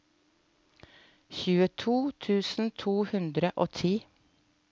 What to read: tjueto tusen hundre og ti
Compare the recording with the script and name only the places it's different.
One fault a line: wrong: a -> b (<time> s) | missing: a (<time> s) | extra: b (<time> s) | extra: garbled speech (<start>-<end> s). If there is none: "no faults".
extra: to (2.9 s)